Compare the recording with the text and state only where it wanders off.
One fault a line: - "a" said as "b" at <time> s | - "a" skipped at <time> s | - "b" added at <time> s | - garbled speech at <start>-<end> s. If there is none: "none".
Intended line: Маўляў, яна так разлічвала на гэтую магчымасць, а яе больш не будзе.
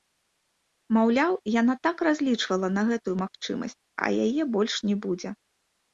none